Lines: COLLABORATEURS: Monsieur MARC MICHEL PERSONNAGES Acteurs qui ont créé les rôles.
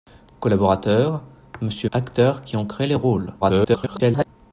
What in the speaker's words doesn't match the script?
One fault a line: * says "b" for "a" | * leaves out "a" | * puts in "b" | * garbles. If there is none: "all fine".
* leaves out "MARC MICHEL PERSONNAGES"
* garbles